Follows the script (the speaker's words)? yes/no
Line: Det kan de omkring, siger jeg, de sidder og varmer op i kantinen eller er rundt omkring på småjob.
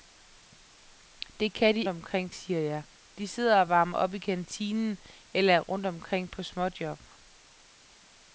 yes